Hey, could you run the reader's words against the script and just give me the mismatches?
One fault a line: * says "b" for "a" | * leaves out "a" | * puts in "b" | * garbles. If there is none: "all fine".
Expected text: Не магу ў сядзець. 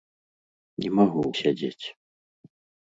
all fine